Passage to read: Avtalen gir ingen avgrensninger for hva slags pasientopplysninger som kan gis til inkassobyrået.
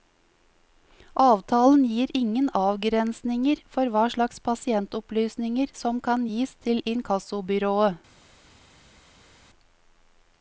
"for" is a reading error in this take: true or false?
false